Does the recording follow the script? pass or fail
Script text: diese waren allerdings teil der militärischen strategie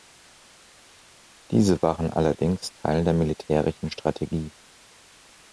pass